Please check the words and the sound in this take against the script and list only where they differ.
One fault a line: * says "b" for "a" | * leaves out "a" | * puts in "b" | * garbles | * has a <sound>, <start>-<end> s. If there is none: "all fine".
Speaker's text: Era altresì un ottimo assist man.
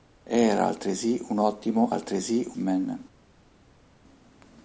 * says "altresì" for "assist"